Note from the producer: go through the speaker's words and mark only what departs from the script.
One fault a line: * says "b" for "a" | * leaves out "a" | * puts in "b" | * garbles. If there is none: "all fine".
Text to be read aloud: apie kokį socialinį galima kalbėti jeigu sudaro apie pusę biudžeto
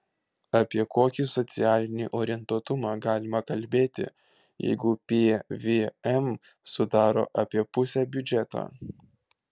* puts in "orientuotumą"
* puts in "pvm"